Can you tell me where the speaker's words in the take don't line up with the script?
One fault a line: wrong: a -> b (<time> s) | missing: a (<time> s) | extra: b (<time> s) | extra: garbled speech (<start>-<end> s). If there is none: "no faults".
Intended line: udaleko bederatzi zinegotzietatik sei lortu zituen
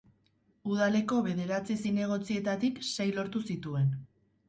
no faults